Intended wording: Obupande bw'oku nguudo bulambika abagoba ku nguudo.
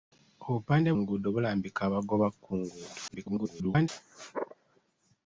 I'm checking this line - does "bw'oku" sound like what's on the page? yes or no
no